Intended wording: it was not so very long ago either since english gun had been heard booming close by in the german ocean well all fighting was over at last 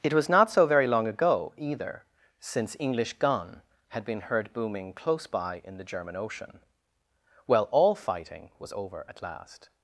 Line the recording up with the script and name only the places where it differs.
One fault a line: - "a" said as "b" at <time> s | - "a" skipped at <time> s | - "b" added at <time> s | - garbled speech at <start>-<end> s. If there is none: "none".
none